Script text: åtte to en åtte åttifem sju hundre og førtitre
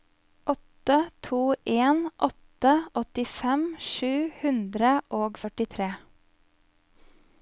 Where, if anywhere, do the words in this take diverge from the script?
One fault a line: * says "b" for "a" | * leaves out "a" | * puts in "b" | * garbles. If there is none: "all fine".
all fine